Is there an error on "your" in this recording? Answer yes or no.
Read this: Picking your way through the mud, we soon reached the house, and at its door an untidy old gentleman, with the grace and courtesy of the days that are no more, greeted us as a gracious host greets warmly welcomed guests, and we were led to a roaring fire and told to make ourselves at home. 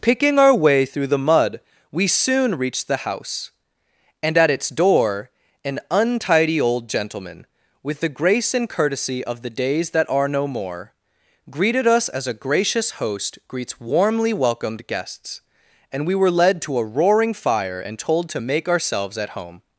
yes